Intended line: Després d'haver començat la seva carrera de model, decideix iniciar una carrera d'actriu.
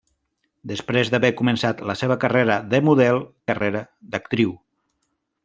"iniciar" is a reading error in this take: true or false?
true